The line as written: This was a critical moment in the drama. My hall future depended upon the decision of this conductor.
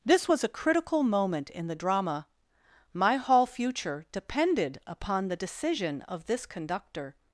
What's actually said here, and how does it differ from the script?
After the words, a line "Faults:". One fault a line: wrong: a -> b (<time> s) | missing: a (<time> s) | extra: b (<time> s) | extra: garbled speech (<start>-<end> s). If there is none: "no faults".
This was a critical moment in the drama. My hall future depended upon the decision of this conductor.
Faults:
no faults